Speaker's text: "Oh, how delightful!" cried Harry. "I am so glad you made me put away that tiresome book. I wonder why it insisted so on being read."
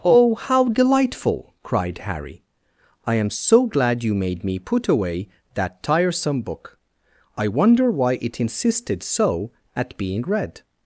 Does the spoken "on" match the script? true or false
false